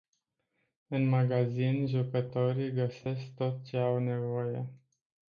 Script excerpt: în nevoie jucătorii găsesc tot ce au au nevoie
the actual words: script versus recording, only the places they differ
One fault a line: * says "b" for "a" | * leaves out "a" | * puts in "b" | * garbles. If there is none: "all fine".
* says "magazin" for "nevoie"
* leaves out "au"